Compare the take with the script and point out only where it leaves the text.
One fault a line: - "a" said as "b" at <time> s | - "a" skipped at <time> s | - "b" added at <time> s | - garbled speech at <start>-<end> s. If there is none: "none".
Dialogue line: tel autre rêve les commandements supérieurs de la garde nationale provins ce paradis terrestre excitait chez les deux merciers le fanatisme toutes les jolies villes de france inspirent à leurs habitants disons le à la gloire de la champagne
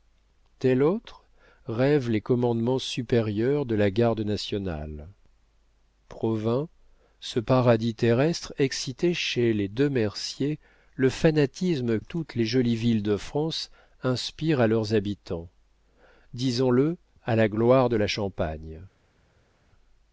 none